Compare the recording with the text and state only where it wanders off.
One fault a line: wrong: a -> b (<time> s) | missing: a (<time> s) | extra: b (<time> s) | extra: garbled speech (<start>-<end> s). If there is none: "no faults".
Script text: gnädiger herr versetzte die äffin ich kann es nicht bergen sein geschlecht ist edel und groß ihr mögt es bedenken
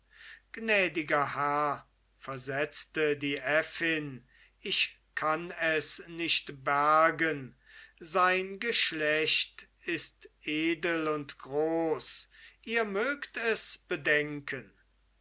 no faults